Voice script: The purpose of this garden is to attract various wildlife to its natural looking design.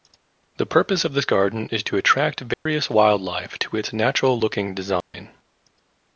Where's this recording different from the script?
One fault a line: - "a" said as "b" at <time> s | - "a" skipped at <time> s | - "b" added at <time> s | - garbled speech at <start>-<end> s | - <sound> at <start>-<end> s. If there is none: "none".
- dropout at 2.5-2.7 s
- dropout at 5.0-5.1 s